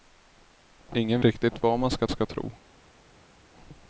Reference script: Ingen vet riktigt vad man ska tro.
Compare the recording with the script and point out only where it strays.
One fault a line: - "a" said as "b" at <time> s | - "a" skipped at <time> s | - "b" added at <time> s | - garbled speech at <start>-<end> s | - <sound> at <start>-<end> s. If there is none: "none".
- "vet" skipped at 1.2 s
- "ska" added at 2.1 s